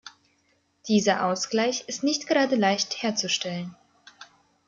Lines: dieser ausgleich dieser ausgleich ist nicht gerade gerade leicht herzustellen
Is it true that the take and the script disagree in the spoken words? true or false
true